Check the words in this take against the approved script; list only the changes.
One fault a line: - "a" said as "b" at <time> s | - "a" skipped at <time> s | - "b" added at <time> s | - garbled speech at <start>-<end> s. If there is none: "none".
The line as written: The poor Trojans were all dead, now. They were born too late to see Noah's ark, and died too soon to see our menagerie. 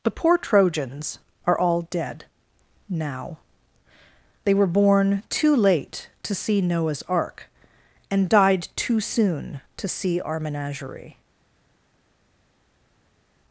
- "were" said as "are" at 1.4 s